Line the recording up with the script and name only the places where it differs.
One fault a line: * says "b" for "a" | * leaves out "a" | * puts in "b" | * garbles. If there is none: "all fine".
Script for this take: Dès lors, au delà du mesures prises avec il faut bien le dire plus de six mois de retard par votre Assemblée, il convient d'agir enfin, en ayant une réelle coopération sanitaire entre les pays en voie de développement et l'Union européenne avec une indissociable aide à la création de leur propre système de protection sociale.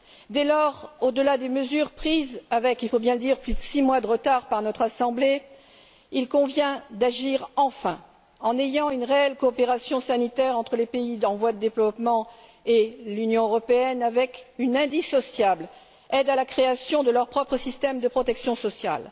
* says "des" for "du"
* says "notre" for "votre"